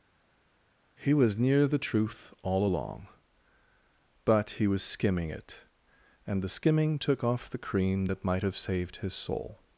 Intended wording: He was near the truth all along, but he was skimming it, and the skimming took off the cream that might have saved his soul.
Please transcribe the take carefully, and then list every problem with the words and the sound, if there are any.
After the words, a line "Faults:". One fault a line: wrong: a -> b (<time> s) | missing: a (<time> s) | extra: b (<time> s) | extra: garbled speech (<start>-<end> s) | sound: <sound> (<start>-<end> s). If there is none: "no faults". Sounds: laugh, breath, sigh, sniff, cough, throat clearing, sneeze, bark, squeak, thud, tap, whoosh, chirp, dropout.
He was near the truth all along, but he was skimming it, and the skimming took off the cream that might have saved his soul.
Faults:
no faults